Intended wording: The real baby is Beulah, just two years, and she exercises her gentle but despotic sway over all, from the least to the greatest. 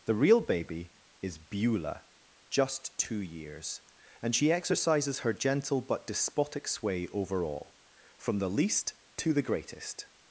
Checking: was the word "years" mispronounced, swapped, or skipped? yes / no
no